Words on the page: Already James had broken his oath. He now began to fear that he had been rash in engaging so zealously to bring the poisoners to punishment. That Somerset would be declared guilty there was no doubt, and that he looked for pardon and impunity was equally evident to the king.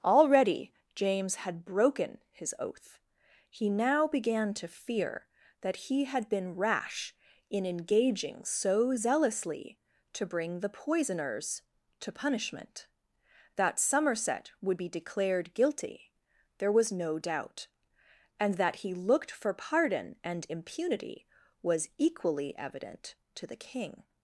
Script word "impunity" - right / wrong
right